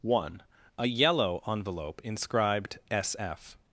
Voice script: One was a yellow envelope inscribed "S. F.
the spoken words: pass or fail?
fail